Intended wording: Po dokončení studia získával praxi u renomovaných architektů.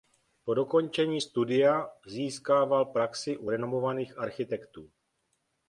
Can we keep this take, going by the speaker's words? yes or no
yes